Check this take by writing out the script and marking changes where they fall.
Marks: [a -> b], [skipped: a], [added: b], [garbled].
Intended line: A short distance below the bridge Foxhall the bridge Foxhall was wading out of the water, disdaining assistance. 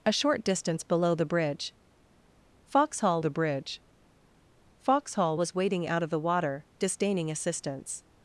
A short distance below the bridge Foxhall the bridge Foxhall was wading out of the water, disdaining assistance.